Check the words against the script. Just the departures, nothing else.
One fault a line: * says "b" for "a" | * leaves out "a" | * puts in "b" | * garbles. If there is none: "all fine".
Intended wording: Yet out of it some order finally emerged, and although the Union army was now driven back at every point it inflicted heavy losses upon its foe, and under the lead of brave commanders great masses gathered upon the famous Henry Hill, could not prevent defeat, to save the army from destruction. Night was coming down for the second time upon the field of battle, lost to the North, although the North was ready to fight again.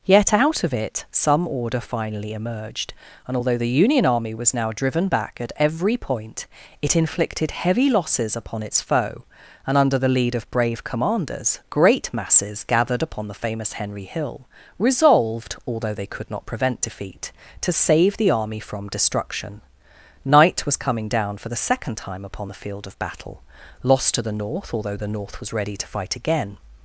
* puts in "resolved although they"